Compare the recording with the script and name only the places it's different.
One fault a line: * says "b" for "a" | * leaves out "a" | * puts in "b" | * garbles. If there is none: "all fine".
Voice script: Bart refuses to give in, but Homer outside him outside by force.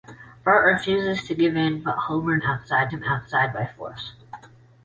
all fine